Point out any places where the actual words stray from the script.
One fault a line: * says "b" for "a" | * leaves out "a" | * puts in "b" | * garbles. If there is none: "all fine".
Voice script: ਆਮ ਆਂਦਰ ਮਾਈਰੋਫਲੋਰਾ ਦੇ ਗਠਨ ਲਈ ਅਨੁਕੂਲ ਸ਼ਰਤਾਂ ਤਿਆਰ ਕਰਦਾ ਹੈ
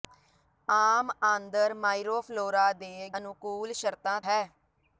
* leaves out "ਗਠਨ ਲਈ"
* leaves out "ਤਿਆਰ ਕਰਦਾ"